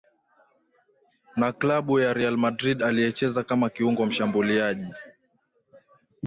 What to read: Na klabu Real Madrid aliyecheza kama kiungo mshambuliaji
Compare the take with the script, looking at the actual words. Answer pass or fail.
fail